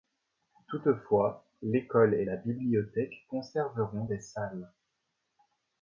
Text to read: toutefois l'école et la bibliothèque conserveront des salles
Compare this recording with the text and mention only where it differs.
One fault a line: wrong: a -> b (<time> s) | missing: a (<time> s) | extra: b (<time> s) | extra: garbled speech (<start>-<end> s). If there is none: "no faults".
no faults